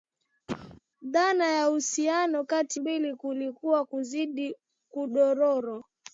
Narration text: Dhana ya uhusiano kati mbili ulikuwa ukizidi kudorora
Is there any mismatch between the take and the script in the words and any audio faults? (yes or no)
yes